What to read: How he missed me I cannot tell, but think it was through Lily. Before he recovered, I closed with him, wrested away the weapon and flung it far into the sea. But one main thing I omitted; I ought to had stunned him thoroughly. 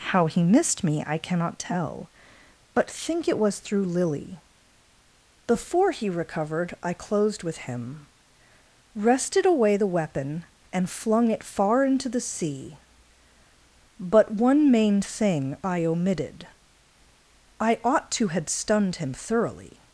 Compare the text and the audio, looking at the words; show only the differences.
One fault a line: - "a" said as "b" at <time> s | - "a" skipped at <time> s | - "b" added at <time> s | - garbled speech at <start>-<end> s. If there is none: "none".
none